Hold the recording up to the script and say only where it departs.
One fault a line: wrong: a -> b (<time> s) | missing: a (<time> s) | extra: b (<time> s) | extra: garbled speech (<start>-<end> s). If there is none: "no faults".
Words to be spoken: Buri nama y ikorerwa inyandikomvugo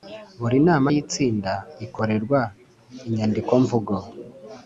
extra: itsinda (1.0 s)